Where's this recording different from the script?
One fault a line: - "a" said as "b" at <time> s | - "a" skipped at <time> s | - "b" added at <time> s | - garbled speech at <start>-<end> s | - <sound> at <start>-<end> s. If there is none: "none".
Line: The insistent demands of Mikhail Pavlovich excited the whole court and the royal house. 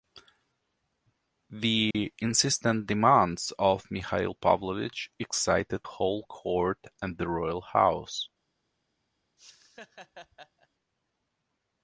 - dropout at 1.9-1.9 s
- "the" skipped at 5.8 s
- laugh at 9.4-10.7 s